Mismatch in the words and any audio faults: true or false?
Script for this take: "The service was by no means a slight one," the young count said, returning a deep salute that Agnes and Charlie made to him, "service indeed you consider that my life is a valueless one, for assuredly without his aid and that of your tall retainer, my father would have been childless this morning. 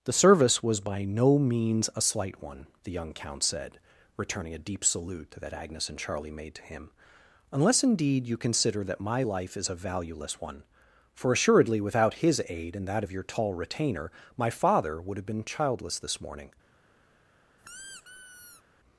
true